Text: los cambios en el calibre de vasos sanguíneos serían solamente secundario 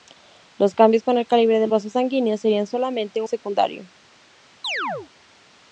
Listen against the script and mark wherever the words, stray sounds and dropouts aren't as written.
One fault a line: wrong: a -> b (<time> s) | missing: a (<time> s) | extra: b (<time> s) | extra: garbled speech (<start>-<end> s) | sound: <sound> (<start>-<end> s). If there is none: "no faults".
sound: chirp (4.6-5.1 s)